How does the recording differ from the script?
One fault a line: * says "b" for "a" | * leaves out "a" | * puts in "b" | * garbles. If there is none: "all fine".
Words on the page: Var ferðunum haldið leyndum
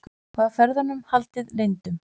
all fine